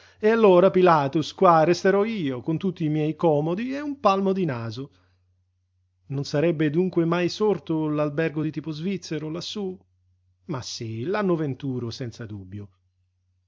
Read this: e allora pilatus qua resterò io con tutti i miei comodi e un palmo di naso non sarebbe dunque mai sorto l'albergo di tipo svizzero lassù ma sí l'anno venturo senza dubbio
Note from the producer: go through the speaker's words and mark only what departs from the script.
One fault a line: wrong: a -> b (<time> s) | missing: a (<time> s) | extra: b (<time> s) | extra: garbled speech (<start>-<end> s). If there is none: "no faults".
no faults